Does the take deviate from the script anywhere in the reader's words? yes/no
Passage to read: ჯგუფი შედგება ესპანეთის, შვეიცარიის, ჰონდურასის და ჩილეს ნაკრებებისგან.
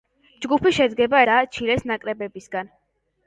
yes